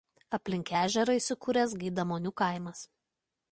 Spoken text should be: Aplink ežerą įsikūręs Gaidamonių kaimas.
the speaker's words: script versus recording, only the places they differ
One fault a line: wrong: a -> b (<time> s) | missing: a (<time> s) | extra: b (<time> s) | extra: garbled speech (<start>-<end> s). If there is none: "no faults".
no faults